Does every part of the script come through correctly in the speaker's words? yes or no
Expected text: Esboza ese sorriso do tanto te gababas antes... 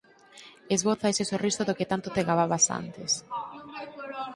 no